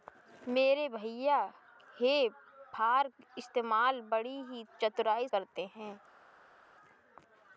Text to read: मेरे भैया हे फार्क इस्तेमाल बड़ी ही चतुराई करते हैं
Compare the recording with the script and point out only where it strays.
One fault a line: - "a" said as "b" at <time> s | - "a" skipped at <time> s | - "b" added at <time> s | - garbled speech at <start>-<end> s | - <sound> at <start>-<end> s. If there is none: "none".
none